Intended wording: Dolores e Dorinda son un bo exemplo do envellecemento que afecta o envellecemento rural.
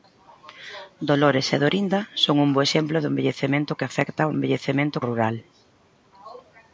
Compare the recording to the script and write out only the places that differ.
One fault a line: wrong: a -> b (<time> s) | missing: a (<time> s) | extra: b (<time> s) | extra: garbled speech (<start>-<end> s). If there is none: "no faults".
no faults